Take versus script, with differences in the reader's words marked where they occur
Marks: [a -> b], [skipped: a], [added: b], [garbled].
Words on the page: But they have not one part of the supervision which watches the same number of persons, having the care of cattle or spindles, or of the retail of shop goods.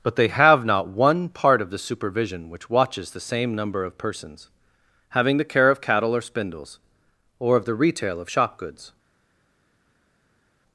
But they have not one part of the supervision which watches the same number of persons, having the care of cattle or spindles, or of the retail of shop goods.